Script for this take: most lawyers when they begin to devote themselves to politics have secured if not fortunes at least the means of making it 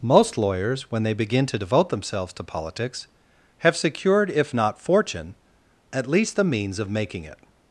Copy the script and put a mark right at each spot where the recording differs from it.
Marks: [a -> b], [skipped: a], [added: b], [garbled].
most lawyers when they begin to devote themselves to politics have secured if not [fortunes -> fortune] at least the means of making it